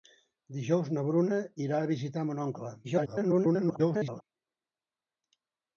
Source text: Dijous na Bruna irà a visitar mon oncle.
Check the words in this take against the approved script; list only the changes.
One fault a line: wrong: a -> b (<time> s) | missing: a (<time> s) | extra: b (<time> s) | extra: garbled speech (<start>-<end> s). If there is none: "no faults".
extra: garbled speech (2.8-4.2 s)